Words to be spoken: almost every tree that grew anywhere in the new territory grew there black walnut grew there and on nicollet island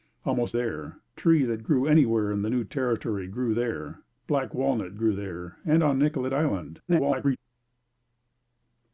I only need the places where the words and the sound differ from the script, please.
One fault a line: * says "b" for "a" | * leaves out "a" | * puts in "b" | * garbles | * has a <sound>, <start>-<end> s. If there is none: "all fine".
* says "there" for "every"
* garbles